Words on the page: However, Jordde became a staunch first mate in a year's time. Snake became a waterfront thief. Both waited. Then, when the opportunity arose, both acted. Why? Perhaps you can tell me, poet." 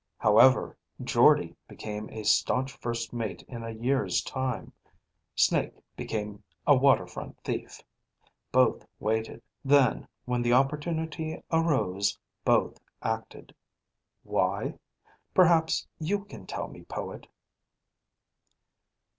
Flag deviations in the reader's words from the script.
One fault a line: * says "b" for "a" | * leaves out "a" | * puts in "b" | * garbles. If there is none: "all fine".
all fine